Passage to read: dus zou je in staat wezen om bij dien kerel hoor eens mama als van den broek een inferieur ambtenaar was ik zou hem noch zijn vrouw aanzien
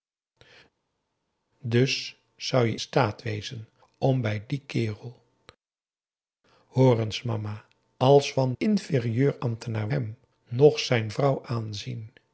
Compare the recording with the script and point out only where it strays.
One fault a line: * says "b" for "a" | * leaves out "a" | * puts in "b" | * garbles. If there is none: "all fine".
* leaves out "in"
* leaves out "den broek een"
* leaves out "was ik zou"